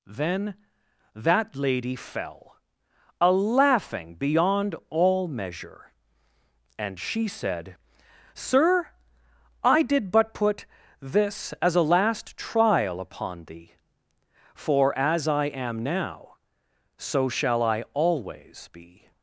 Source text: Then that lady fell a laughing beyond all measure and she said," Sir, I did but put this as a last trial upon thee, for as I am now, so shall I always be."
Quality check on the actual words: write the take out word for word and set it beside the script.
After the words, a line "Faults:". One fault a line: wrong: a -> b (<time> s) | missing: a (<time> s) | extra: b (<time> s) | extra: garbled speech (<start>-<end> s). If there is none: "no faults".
Then that lady fell a laughing beyond all measure and she said," Sir, I did but put this as a last trial upon thee, for as I am now, so shall I always be."
Faults:
no faults